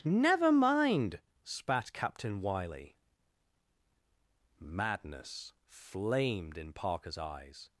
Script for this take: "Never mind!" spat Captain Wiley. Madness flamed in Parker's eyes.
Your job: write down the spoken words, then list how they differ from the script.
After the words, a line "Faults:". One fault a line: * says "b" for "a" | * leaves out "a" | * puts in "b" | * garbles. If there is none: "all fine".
"Never mind!" spat Captain Wiley. Madness flamed in Parker's eyes.
Faults:
all fine